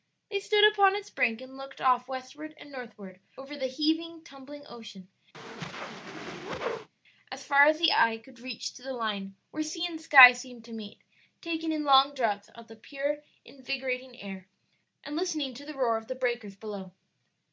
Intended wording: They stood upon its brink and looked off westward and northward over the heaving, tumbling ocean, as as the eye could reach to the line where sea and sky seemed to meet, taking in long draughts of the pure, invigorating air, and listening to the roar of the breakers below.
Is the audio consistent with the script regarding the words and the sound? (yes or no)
no